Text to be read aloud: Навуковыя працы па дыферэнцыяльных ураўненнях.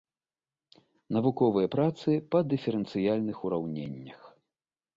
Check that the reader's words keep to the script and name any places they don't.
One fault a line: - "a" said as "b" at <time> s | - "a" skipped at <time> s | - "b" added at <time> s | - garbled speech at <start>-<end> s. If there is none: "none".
none